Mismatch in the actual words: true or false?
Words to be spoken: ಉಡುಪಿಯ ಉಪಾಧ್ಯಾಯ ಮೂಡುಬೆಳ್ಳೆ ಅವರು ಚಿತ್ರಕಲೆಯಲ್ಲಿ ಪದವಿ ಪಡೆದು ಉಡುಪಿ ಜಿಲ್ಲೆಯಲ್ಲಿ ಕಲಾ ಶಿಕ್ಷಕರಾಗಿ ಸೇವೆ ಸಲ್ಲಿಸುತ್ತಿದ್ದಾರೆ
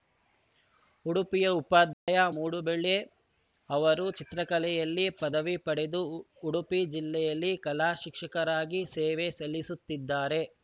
false